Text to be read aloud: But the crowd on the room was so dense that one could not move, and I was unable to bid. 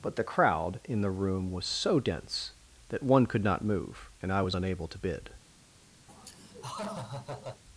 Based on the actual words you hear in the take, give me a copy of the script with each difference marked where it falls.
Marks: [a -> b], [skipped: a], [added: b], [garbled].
But the crowd [on -> in] the room was so dense that one could not move, and I was unable to bid.